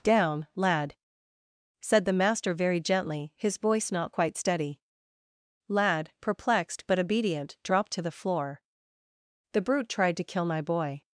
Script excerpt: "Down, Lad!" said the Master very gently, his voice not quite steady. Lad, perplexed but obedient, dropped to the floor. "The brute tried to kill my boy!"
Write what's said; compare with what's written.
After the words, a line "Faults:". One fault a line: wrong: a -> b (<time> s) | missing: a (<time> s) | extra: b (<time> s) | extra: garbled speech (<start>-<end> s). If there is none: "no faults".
"Down, Lad!" said the Master very gently, his voice not quite steady. Lad, perplexed but obedient, dropped to the floor. "The brute tried to kill my boy!"
Faults:
no faults